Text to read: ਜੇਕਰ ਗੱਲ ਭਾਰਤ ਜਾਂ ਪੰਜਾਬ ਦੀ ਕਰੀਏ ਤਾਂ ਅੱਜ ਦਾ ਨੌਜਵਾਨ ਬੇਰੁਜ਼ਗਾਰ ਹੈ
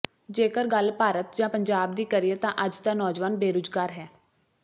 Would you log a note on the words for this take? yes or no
no